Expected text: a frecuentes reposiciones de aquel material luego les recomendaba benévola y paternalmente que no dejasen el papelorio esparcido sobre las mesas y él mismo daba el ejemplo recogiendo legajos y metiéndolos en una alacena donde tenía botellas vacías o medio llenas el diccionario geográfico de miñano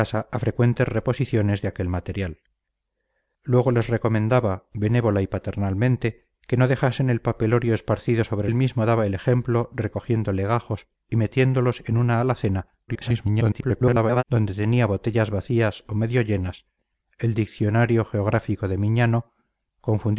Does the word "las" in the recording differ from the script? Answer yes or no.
yes